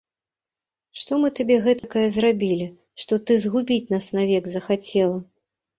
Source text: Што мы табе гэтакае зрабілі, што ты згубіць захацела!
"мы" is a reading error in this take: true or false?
false